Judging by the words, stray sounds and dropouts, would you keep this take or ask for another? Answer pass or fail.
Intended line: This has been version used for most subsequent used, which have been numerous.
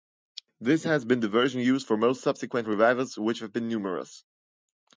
fail